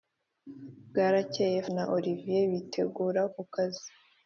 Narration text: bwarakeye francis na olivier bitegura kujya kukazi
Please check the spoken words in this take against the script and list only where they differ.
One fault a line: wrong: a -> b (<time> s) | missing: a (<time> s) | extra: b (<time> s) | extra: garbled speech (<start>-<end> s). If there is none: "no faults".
missing: francis (1.6 s)
missing: kujya (3.2 s)